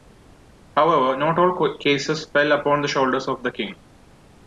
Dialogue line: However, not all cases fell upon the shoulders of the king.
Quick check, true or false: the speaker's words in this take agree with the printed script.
true